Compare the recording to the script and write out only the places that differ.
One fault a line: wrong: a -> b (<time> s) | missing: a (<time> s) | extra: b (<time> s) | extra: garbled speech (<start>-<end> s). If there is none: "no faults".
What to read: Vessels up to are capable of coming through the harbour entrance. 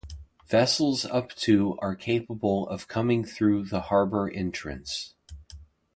no faults